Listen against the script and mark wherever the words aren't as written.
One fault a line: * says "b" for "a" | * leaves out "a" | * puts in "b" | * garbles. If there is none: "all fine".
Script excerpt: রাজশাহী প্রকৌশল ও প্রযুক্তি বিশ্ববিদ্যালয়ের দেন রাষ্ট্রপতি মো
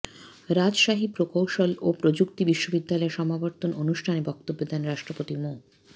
* puts in "সমাবর্তন অনুষ্ঠানে বক্তব্য"